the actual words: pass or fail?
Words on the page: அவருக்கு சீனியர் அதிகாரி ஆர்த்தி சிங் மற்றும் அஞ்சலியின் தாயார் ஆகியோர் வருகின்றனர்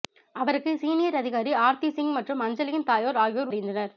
pass